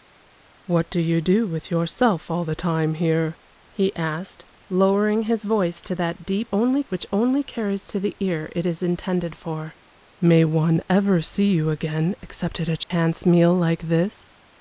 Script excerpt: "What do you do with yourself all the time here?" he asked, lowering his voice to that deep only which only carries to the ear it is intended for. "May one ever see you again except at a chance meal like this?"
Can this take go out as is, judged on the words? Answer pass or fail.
pass